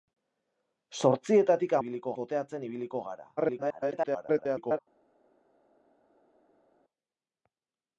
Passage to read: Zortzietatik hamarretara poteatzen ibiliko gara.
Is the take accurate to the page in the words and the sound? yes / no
no